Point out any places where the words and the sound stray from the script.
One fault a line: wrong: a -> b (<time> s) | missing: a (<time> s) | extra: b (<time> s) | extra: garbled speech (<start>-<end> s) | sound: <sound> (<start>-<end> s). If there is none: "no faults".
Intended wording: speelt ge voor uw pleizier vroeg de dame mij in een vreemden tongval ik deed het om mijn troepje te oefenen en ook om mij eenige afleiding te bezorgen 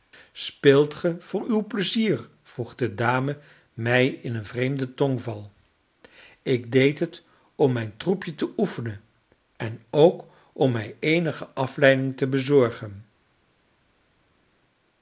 no faults